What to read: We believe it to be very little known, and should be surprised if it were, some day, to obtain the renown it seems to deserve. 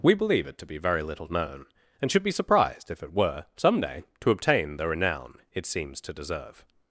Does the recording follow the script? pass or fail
pass